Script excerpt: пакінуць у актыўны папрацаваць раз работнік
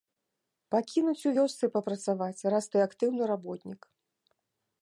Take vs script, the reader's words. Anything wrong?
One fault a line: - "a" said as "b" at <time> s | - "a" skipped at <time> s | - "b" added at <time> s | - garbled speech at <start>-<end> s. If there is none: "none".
- "актыўны" said as "вёсцы" at 1.4 s
- "ты актыўны" added at 2.7 s